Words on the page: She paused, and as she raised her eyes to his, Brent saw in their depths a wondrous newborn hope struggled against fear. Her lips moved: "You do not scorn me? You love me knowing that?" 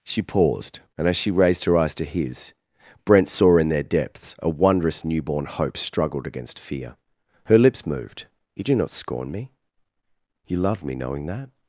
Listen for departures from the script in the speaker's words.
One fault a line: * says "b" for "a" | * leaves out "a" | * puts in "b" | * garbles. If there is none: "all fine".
all fine